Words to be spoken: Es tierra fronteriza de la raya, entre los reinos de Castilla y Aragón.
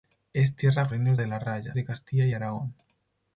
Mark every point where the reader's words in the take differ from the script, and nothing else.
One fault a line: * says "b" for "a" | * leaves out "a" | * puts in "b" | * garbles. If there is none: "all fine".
* says "reinos" for "fronteriza"
* leaves out "entre los reinos"